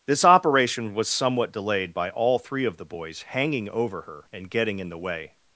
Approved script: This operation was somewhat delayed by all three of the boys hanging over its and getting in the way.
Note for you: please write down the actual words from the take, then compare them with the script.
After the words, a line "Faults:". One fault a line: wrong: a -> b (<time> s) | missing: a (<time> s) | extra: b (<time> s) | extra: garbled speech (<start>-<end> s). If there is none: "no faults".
This operation was somewhat delayed by all three of the boys hanging over her and getting in the way.
Faults:
wrong: its -> her (4.0 s)